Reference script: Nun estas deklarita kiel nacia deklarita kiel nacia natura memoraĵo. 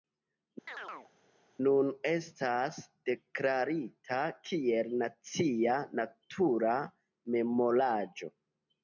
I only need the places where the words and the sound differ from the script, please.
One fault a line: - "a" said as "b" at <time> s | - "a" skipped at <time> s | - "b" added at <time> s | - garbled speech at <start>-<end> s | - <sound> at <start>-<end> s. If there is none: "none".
- chirp at 0.7-1.1 s
- "deklarita kiel nacia" skipped at 5.8 s